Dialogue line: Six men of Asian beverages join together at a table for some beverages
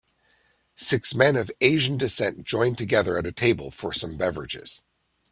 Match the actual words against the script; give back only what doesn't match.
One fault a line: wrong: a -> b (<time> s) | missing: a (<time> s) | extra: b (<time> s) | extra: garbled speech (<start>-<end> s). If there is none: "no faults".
wrong: beverages -> descent (1.9 s)